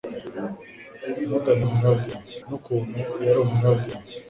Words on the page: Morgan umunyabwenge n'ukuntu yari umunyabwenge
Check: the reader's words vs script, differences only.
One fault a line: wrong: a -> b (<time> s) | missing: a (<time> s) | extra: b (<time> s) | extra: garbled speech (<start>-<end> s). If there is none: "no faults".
no faults